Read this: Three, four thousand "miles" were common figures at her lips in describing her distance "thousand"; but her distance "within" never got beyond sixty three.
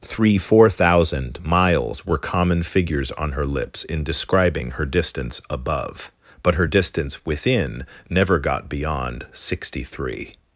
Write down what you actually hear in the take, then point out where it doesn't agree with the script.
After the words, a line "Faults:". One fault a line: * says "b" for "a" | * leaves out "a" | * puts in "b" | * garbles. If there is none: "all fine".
Three, four thousand "miles" were common figures on her lips in describing her distance "above"; but her distance "within" never got beyond sixty three.
Faults:
* says "on" for "at"
* says "above" for "thousand"